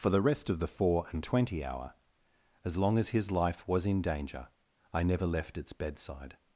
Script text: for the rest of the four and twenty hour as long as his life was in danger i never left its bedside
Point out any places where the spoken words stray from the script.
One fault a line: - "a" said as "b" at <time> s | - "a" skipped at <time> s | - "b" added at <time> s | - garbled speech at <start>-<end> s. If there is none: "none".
none